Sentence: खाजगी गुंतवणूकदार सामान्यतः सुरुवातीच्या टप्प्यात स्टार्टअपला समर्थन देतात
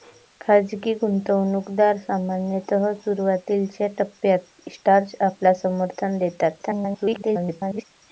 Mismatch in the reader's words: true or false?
true